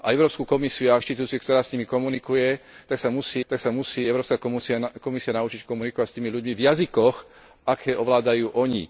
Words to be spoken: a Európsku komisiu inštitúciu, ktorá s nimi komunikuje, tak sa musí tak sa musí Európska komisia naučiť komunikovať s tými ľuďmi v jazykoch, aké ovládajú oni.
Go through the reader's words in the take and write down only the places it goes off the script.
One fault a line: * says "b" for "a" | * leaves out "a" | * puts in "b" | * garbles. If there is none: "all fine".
all fine